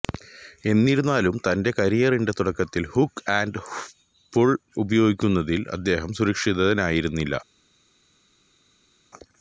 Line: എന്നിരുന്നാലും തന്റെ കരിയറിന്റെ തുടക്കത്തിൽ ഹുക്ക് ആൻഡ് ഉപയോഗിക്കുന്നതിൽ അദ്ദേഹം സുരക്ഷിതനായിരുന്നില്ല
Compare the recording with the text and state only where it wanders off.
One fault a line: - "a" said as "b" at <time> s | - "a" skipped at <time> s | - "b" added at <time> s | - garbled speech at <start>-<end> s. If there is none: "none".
- "പുൾ" added at 4.3 s